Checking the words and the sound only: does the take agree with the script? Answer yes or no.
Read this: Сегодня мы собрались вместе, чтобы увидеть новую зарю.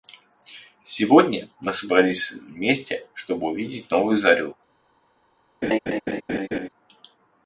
no